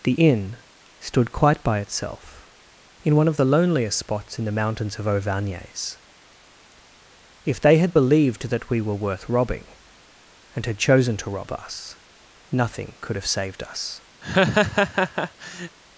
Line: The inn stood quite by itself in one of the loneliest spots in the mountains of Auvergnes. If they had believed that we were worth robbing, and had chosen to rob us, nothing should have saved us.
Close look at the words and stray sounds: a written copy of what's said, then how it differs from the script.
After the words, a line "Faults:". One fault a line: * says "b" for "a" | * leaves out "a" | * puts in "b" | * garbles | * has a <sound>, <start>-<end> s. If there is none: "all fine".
The inn stood quite by itself in one of the loneliest spots in the mountains of Auvergnes. If they had believed that we were worth robbing, and had chosen to rob us, nothing could have saved us.
Faults:
* says "could" for "should"
* has a laugh, 14.2-15.8 s